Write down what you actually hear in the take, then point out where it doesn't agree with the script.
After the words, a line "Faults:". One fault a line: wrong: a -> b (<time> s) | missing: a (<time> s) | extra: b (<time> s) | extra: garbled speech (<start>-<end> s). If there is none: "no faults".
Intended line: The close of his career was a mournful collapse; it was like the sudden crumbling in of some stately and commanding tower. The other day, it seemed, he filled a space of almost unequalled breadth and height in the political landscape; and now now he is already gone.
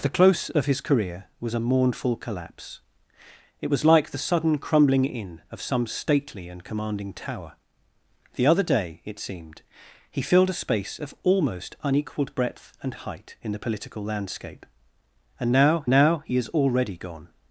The close of his career was a mournful collapse; it was like the sudden crumbling in of some stately and commanding tower. The other day, it seemed, he filled a space of almost unequalled breadth and height in the political landscape; and now now he is already gone.
Faults:
no faults